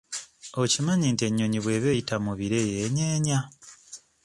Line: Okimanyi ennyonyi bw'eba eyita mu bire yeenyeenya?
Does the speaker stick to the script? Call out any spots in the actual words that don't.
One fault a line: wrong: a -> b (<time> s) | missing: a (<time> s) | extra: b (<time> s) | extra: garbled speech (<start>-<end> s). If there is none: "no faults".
extra: nti (1.1 s)